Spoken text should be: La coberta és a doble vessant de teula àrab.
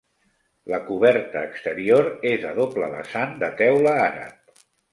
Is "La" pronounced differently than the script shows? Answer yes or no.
no